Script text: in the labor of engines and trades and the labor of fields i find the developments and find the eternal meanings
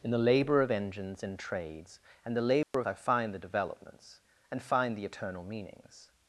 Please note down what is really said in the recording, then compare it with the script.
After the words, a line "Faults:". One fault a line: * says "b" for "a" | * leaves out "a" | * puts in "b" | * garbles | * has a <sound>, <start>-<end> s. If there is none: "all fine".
in the labor of engines and trades and the labor of i find the developments and find the eternal meanings
Faults:
* has a dropout, 2.6-2.7 s
* leaves out "fields"